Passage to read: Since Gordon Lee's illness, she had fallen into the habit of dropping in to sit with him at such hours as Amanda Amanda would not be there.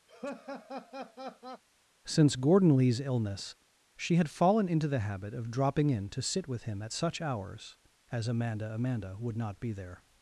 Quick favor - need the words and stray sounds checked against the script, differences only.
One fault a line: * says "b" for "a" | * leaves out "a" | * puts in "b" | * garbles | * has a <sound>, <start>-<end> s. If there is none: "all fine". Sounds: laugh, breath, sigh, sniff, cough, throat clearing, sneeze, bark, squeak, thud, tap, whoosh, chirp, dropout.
* has a laugh, 0.1-1.6 s